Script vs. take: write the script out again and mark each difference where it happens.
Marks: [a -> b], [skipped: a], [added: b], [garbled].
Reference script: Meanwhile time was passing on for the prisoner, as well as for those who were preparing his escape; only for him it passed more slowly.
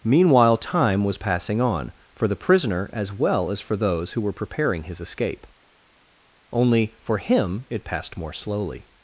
Meanwhile time was passing on for the prisoner, as well as for those who were preparing his escape; only for him it passed more slowly.